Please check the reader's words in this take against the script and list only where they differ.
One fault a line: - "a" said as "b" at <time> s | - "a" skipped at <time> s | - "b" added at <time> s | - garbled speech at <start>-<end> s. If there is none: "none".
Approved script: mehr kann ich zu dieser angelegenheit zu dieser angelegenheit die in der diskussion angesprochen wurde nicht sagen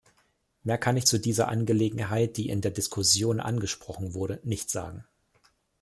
- "zu dieser angelegenheit" skipped at 2.4 s